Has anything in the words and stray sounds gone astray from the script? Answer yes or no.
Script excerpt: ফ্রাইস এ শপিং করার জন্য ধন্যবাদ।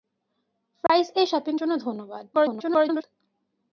yes